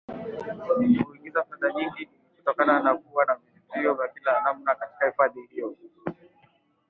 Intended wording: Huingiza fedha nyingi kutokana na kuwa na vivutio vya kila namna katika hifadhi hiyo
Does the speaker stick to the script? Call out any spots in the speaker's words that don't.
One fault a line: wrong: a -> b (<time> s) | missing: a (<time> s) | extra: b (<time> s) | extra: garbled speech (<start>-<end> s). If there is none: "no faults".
no faults